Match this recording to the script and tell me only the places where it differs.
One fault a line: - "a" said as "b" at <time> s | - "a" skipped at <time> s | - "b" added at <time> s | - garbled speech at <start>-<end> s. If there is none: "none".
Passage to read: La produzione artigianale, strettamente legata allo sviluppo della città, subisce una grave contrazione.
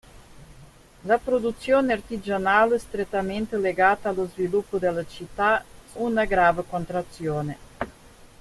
- "subisce" skipped at 5.6 s